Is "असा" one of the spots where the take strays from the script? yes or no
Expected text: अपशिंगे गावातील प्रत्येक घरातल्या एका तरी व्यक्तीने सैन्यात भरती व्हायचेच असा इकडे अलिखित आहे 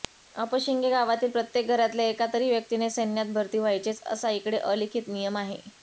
no